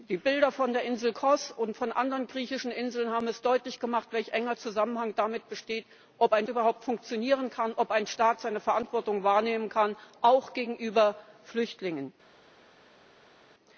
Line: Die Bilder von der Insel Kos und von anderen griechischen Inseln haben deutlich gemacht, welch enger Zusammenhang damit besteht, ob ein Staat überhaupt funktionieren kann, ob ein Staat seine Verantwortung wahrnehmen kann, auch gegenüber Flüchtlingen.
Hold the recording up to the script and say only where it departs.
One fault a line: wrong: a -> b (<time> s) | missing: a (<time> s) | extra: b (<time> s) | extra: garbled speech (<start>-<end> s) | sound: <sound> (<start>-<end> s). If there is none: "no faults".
missing: Staat (6.5 s)